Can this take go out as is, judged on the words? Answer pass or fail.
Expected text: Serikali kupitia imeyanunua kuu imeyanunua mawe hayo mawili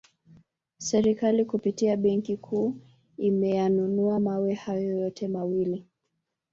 fail